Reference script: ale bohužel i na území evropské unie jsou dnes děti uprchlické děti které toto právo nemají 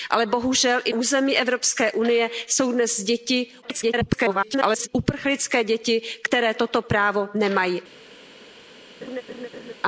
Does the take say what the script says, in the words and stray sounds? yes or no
no